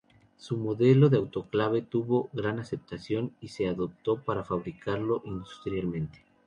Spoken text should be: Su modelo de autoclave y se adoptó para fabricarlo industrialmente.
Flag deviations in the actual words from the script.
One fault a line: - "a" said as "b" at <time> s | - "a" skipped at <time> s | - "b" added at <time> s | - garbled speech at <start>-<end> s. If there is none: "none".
- "tuvo gran aceptación" added at 1.8 s